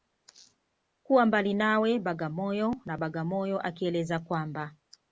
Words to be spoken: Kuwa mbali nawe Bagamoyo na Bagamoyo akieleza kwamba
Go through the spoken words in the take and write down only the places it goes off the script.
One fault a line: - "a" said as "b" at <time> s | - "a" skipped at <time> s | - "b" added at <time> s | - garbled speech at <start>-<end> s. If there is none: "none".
none